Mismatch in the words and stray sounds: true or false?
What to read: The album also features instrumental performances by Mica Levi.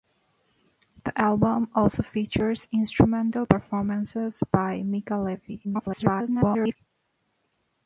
true